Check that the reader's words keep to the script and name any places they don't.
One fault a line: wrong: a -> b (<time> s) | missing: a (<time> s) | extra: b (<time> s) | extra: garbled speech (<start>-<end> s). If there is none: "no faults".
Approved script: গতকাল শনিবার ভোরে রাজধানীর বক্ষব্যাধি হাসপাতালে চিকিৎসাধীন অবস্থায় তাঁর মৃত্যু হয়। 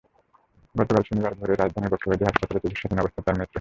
no faults